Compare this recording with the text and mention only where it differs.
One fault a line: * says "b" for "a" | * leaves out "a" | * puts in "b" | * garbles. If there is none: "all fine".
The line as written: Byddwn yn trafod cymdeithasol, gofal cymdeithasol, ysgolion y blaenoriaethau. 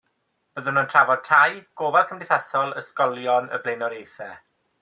* says "tai" for "cymdeithasol"